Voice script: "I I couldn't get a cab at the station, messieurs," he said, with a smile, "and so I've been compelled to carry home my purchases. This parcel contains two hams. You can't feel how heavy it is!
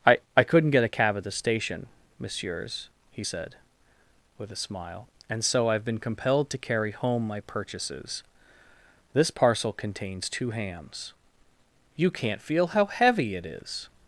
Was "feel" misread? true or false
false